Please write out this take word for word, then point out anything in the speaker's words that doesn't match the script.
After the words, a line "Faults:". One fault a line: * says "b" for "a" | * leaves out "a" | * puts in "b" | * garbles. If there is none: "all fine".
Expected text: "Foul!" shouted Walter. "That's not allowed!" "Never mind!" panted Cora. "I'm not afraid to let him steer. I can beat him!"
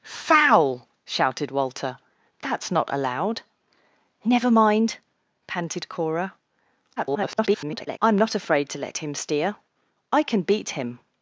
"Foul!" shouted Walter. "That's not allowed!" "Never mind!" panted Cora. [garbled] "I'm not afraid to let him steer. I can beat him!"
Faults:
* garbles